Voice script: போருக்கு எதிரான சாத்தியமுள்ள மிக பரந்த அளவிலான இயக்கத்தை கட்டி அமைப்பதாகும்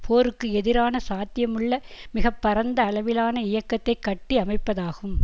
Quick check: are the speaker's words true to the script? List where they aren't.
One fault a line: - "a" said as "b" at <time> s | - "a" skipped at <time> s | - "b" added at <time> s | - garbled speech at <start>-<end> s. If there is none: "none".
none